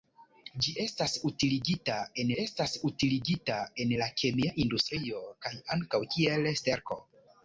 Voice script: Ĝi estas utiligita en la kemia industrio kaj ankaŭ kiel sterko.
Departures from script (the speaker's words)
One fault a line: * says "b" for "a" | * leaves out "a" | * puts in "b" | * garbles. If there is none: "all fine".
* puts in "estas utiligita en"